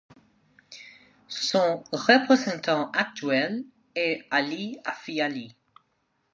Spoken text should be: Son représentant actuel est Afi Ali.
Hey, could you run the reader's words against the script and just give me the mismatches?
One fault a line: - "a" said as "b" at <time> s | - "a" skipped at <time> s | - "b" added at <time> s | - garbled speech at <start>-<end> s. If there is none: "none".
- "Ali" added at 4.3 s